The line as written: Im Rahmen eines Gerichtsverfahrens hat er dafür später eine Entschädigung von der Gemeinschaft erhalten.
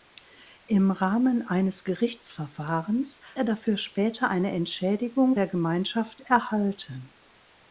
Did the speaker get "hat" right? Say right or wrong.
wrong